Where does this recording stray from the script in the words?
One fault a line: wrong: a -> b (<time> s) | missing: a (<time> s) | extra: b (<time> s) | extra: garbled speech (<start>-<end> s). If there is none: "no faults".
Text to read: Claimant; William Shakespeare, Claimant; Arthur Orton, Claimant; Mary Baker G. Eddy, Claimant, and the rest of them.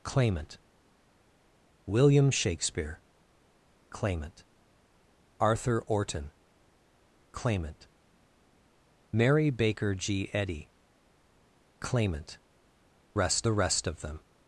wrong: and -> rest (13.1 s)